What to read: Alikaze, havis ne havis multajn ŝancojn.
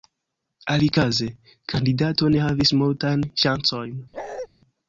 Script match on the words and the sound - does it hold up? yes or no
no